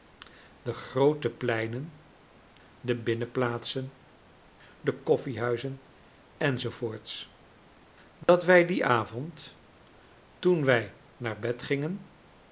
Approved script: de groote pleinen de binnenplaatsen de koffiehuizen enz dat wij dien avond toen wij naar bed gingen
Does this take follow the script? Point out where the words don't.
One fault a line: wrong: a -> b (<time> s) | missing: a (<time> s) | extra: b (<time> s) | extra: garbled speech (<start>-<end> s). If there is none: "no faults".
no faults